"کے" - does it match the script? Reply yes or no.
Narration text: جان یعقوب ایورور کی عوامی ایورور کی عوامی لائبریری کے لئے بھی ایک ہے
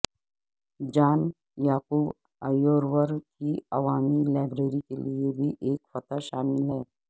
yes